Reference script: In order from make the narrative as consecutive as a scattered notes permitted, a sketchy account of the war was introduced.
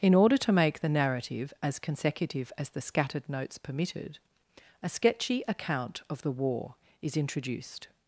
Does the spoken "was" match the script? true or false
false